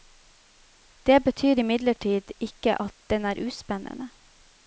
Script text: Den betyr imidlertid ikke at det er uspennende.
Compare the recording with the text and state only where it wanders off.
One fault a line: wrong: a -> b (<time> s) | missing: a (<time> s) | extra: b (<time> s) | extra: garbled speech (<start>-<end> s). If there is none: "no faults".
wrong: Den -> Det (1.1 s)
wrong: det -> den (3.1 s)